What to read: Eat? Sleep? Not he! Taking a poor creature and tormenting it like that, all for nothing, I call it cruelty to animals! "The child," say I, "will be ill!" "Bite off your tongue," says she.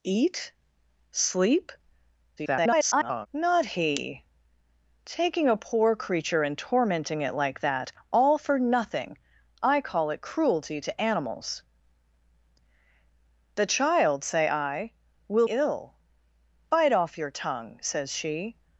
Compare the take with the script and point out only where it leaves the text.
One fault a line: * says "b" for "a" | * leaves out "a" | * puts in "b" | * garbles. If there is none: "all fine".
* garbles
* leaves out "be"